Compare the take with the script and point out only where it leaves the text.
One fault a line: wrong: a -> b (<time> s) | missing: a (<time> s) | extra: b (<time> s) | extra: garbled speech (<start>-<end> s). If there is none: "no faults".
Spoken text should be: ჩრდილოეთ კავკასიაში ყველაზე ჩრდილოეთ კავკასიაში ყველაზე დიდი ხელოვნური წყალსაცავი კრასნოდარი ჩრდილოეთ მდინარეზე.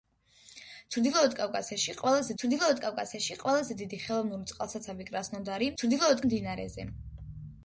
no faults